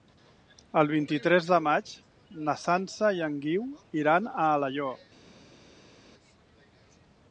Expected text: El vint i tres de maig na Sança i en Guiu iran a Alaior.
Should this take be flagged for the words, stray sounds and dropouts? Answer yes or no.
no